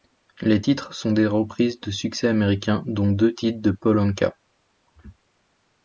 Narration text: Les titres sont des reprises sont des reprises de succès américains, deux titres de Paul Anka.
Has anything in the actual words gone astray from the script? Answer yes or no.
yes